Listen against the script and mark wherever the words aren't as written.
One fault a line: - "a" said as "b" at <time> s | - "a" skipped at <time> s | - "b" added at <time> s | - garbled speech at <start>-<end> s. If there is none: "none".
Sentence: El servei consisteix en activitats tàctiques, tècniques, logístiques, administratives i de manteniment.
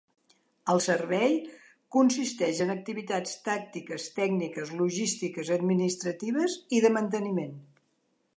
none